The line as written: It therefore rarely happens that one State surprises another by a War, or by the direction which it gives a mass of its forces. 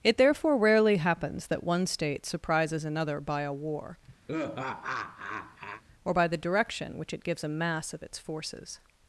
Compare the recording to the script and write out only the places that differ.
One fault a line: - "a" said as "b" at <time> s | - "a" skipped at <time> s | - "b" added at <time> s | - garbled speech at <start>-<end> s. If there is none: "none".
none